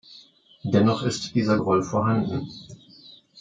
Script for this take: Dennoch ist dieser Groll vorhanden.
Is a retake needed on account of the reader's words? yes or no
no